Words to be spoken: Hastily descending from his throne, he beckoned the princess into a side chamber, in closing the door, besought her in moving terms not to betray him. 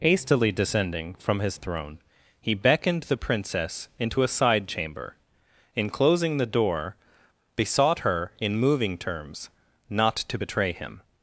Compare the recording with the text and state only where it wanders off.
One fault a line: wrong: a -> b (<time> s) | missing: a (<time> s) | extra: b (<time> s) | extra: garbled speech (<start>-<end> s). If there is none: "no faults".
no faults